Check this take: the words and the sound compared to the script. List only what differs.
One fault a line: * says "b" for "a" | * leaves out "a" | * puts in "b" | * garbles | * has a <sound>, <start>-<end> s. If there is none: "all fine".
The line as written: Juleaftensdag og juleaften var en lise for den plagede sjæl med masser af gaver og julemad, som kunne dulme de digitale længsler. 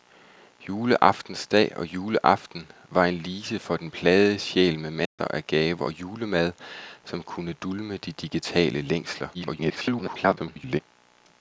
* has a dropout, 5.1-5.2 s
* garbles